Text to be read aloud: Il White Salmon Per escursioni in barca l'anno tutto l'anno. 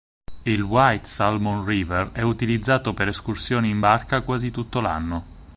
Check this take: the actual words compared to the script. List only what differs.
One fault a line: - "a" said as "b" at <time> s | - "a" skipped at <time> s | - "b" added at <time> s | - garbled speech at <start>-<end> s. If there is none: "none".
- "River è utilizzato" added at 1.6 s
- "l'anno" said as "quasi" at 4.2 s